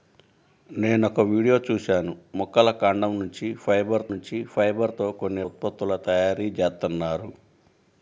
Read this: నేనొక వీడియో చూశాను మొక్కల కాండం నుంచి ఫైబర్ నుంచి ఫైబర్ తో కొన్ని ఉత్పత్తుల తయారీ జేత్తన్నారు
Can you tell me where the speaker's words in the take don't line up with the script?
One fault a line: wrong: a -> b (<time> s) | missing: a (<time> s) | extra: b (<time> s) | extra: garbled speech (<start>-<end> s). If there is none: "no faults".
no faults